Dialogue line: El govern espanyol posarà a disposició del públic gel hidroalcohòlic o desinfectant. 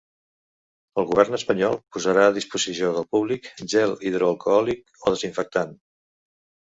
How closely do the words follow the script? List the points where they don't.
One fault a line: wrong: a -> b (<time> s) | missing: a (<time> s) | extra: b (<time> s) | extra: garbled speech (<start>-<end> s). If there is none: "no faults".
no faults